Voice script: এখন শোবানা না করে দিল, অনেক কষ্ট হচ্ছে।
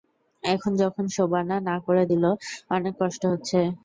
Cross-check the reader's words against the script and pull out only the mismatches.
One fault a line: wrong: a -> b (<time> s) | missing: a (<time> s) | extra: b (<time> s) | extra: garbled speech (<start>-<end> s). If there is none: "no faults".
extra: যখন (0.8 s)